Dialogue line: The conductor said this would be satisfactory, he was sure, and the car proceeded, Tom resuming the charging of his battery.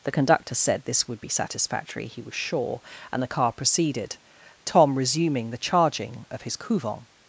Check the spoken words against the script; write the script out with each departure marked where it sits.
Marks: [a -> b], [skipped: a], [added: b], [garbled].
The conductor said this would be satisfactory, he was sure, and the car proceeded, Tom resuming the charging of his [battery. -> couvent]